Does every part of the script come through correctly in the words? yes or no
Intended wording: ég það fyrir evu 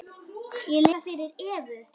yes